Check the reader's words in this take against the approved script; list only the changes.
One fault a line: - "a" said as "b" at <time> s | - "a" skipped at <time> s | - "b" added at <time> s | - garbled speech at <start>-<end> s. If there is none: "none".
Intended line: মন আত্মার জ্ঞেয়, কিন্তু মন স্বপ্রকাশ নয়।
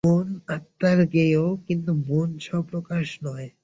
none